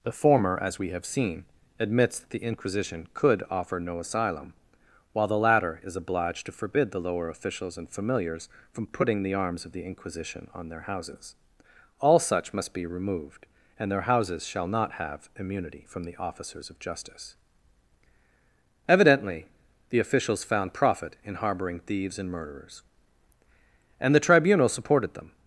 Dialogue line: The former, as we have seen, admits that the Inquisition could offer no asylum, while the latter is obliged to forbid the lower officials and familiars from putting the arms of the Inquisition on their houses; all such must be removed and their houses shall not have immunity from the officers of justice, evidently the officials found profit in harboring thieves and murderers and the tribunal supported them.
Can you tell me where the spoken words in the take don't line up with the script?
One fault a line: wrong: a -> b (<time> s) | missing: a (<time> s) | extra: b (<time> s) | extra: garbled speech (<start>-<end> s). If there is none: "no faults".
no faults